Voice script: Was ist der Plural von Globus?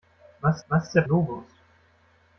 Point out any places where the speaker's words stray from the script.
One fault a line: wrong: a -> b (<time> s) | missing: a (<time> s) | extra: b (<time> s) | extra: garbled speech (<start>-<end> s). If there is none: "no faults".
extra: was (0.7 s)
missing: Plural von (1.0 s)